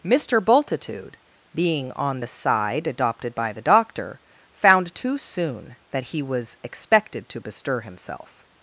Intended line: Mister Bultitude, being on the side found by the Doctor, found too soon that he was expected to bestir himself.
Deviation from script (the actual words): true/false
true